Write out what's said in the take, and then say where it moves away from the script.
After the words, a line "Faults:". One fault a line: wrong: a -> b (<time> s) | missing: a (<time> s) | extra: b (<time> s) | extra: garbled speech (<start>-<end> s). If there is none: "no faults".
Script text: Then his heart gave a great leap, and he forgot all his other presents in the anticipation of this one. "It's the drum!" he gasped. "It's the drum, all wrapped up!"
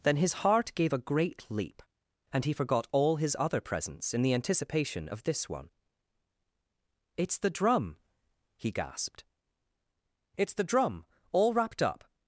Then his heart gave a great leap, and he forgot all his other presents in the anticipation of this one. "It's the drum!" he gasped. "It's the drum, all wrapped up!"
Faults:
no faults